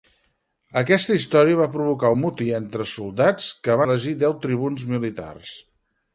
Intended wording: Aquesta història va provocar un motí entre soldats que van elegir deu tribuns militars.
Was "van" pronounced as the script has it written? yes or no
no